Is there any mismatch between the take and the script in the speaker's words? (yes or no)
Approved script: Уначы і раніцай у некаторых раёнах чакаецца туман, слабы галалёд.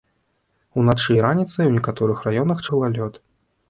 yes